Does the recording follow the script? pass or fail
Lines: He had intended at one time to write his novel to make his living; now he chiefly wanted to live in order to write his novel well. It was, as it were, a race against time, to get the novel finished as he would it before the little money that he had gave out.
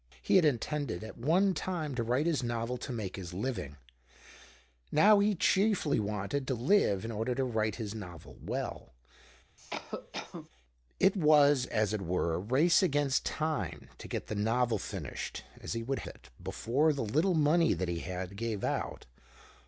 pass